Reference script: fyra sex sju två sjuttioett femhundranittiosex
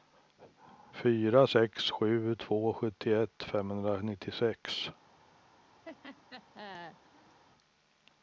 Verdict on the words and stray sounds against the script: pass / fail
fail